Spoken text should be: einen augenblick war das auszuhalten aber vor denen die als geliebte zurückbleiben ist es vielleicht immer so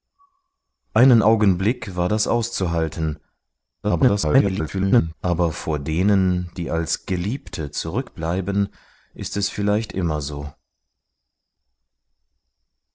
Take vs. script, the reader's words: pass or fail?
fail